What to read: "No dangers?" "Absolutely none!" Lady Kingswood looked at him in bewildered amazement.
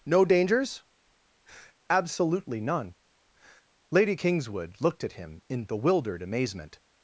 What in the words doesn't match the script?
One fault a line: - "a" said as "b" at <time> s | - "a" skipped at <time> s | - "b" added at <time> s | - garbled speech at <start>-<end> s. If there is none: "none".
none